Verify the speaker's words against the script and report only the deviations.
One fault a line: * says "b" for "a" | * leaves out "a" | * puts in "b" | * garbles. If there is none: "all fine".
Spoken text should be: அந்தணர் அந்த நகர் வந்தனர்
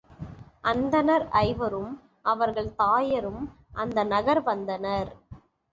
* puts in "ஐவரும் அவர்கள் தாயரும்"